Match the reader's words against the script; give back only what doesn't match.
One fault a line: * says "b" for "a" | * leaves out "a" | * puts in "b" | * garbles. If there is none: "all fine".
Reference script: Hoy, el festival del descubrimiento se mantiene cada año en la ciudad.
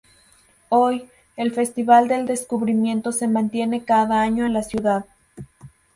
all fine